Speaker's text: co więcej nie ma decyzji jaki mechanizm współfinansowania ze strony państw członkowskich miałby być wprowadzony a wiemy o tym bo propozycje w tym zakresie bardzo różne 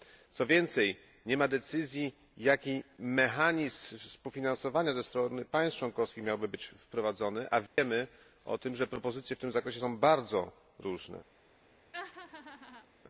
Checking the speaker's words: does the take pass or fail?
fail